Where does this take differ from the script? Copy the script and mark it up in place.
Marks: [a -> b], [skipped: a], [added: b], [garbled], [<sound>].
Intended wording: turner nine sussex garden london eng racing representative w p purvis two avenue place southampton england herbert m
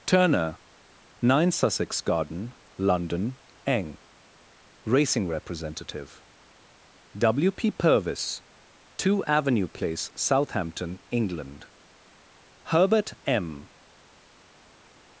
turner nine sussex garden london eng racing representative w p purvis two avenue place southampton england herbert m